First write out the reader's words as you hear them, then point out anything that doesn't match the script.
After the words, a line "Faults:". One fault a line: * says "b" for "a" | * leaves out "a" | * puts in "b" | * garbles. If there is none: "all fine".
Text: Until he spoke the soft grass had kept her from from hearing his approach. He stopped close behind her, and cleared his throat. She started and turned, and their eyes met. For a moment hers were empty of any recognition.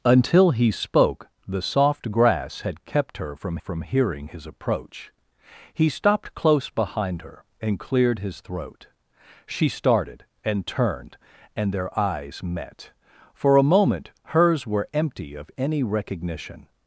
Until he spoke the soft grass had kept her from from hearing his approach. He stopped close behind her, and cleared his throat. She started and turned, and their eyes met. For a moment hers were empty of any recognition.
Faults:
all fine